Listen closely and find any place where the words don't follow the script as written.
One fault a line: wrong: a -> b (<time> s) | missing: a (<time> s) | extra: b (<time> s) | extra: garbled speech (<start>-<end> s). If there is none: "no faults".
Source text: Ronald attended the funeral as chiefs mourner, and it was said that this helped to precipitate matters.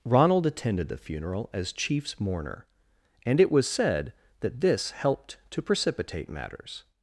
no faults